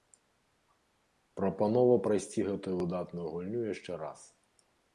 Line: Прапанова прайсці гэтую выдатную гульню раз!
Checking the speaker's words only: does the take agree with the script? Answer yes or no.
no